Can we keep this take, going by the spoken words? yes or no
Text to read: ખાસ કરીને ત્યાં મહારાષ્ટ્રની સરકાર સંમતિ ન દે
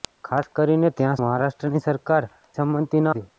yes